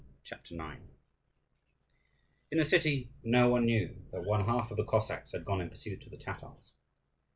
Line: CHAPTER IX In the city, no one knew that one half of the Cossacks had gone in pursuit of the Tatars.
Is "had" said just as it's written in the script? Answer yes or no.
yes